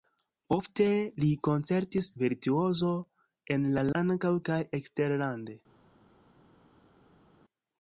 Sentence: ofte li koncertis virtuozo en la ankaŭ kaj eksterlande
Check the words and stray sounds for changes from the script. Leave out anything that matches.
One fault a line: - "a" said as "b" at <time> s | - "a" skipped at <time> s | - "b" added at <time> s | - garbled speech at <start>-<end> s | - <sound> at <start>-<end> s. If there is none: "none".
none